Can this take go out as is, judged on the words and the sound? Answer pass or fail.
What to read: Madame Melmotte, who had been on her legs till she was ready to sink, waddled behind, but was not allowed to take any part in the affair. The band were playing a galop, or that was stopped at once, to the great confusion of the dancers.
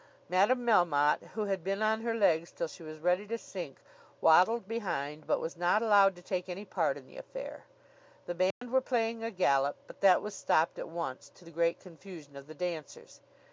fail